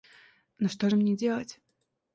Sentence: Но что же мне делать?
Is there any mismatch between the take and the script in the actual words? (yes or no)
no